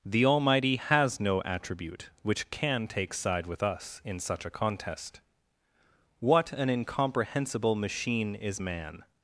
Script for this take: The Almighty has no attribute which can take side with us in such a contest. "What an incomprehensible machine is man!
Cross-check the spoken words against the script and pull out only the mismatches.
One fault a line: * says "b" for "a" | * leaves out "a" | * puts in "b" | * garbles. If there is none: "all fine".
all fine